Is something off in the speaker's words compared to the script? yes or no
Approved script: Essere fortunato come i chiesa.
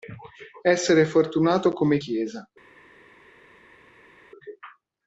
no